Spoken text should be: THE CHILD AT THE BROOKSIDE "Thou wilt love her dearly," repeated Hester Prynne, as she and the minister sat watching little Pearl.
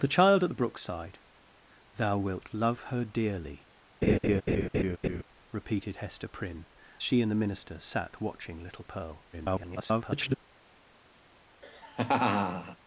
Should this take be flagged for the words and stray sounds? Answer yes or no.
yes